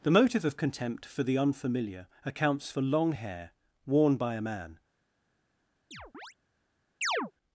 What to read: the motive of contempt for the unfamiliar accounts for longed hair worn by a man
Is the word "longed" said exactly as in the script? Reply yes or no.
no